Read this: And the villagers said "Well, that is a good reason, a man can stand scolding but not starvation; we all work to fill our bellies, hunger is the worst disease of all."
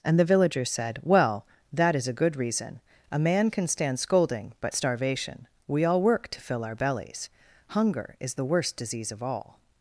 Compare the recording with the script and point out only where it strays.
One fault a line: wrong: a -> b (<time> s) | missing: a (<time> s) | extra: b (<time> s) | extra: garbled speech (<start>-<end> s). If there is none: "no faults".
missing: not (4.7 s)